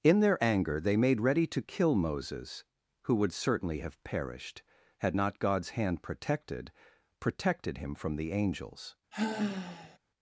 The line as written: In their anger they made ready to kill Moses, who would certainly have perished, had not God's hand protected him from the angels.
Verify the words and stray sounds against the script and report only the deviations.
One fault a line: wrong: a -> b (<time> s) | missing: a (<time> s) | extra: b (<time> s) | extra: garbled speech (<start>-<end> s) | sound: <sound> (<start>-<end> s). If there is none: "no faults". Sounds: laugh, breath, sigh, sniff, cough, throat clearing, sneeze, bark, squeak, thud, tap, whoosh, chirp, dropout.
extra: protected (7.2 s)
sound: sigh (9.1-10.0 s)